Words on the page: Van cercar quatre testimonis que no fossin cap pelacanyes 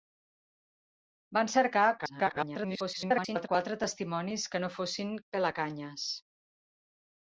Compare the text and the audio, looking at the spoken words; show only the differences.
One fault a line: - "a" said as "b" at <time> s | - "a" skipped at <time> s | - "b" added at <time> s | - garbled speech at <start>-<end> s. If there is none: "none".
- garbled speech at 2.0-3.5 s
- "cap" skipped at 5.2 s